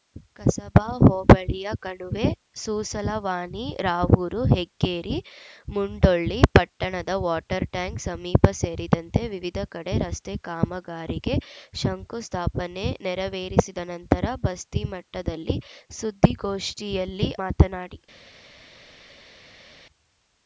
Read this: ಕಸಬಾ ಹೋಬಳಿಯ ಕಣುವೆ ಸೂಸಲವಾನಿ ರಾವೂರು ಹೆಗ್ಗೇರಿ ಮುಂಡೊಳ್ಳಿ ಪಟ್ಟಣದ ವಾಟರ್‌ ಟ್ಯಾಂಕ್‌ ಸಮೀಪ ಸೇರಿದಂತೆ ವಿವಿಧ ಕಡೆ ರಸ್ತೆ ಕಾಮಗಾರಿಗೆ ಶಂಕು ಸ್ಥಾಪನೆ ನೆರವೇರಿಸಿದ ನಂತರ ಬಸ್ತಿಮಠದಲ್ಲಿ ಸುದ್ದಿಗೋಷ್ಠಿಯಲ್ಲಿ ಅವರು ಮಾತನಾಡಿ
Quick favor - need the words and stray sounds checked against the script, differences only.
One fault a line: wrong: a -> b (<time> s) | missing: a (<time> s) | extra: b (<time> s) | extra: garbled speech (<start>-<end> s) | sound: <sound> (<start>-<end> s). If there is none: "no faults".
missing: ಅವರು (17.3 s)